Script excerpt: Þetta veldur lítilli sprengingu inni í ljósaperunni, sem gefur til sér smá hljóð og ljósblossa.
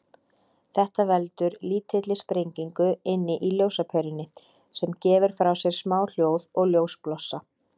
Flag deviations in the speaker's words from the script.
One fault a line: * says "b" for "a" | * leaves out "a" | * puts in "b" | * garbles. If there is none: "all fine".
* says "frá" for "til"